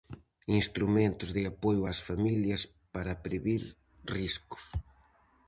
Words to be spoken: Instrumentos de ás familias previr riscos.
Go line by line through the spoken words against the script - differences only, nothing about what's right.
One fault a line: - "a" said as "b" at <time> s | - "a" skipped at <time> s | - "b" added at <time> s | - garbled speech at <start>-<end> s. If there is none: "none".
- "apoio" added at 1.5 s
- "para" added at 2.9 s